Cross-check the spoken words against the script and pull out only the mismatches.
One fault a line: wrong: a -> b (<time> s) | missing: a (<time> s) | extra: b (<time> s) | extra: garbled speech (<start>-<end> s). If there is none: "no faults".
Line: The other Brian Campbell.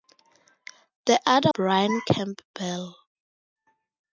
no faults